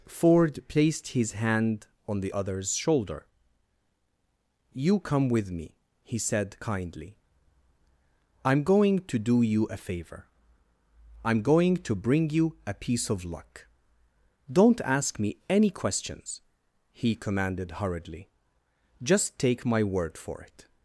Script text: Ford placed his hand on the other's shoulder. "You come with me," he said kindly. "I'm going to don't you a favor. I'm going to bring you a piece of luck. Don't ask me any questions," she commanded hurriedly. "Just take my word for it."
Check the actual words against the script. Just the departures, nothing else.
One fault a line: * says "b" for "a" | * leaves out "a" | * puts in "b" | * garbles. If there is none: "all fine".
* says "do" for "don't"
* says "he" for "she"